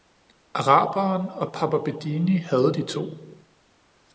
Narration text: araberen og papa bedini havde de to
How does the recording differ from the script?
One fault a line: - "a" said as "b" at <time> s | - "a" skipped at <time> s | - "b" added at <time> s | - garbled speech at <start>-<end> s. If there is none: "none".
none